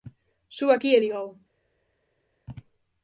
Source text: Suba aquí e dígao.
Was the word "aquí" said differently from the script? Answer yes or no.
no